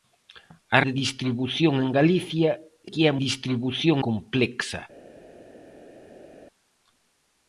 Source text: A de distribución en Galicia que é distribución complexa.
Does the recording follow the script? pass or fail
pass